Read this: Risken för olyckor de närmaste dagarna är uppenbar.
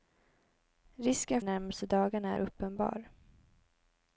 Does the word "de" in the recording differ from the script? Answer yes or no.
yes